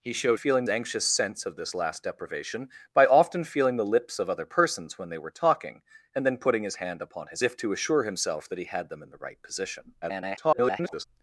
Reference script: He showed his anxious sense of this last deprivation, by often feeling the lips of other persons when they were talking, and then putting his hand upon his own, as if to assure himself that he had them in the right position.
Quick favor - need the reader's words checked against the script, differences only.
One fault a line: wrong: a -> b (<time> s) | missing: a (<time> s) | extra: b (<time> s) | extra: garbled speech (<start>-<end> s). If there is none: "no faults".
wrong: his -> feeling (0.3 s)
missing: own as (7.4 s)
extra: garbled speech (10.0-11.0 s)